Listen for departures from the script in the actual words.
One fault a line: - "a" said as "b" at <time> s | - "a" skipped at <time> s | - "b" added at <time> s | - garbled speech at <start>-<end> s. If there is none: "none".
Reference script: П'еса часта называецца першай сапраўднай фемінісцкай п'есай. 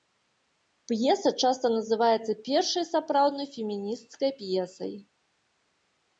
none